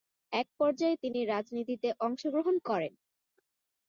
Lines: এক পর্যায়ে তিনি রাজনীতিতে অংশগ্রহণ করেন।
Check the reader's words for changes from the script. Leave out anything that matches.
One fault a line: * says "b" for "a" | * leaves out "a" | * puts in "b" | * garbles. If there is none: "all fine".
all fine